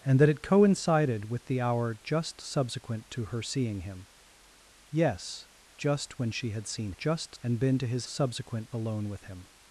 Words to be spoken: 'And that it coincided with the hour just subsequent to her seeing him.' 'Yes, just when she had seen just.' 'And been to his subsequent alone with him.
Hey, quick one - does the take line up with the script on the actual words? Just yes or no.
yes